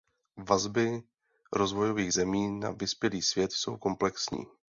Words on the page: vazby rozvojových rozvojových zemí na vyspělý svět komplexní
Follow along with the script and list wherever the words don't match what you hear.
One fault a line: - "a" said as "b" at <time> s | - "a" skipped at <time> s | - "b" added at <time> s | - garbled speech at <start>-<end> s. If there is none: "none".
- "rozvojových" skipped at 2.1 s
- "jsou" added at 3.5 s